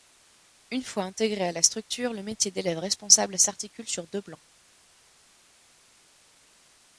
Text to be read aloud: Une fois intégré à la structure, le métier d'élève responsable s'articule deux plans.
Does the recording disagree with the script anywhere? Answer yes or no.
yes